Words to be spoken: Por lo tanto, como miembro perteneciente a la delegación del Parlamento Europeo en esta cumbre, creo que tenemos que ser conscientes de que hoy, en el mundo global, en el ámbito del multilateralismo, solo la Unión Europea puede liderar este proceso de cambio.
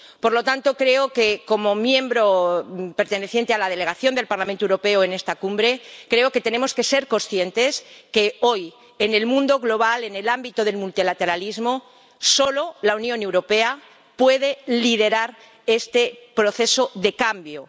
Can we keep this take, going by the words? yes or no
yes